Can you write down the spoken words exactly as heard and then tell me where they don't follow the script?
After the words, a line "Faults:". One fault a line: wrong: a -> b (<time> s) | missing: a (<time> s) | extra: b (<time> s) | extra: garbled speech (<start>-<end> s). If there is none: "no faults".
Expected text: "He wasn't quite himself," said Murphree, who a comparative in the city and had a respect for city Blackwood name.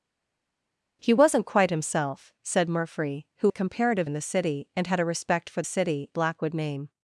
"He wasn't quite himself," said Murphree, who a comparative in the city and had a respect for city Blackwood name.
Faults:
no faults